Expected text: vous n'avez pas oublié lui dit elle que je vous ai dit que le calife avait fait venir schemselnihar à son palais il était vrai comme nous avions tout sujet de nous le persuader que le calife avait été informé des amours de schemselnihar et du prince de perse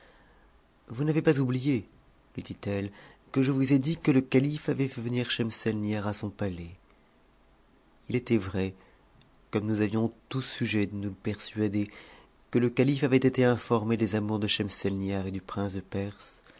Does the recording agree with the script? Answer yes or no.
yes